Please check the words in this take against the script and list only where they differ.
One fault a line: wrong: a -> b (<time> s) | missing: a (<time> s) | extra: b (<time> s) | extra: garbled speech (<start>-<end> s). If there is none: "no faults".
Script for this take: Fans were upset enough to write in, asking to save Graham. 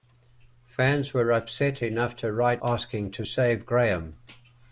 missing: in (2.6 s)